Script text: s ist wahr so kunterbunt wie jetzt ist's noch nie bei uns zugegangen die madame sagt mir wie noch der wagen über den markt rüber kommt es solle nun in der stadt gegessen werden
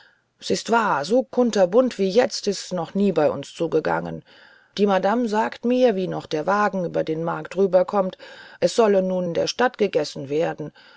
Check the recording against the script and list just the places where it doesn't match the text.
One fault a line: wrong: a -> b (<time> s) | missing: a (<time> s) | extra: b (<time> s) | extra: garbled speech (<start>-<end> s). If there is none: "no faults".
no faults